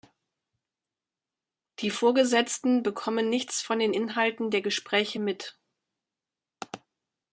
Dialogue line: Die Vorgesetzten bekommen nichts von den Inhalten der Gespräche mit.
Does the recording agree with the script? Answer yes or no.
yes